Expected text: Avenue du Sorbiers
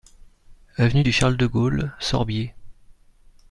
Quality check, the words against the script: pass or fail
fail